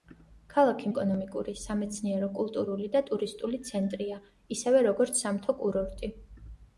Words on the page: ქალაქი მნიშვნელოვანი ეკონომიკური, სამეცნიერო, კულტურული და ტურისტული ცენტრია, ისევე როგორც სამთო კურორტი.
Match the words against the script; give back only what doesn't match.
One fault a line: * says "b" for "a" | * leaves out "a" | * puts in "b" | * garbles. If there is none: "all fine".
* leaves out "მნიშვნელოვანი"